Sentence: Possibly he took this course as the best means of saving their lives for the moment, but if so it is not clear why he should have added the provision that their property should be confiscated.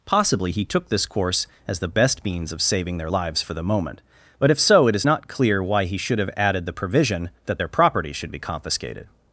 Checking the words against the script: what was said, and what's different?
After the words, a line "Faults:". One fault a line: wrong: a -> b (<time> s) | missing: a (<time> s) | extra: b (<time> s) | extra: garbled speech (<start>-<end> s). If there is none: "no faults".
Possibly he took this course as the best means of saving their lives for the moment, but if so it is not clear why he should have added the provision that their property should be confiscated.
Faults:
no faults